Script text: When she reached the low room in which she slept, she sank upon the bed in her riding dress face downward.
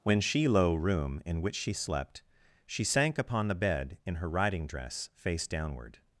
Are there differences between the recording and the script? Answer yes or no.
yes